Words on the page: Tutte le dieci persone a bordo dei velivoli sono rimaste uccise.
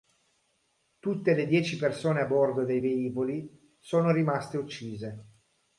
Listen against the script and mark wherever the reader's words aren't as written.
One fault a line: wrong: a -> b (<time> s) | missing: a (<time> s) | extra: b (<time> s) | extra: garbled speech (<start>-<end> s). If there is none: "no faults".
no faults